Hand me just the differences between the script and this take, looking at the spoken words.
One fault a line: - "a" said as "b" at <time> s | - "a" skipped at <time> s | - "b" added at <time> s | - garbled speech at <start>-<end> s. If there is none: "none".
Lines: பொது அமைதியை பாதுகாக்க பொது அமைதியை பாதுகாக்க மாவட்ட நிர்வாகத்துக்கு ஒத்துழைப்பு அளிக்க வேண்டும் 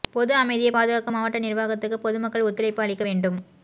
- "பொது அமைதியை பாதுகாக்க" skipped at 1.1 s
- "பொதுமக்கள்" added at 2.1 s